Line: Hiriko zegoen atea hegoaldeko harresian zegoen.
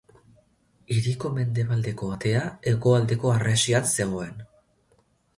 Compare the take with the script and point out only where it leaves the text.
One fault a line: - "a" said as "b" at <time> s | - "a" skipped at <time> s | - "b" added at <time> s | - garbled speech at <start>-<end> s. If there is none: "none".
- "zegoen" said as "mendebaldeko" at 1.3 s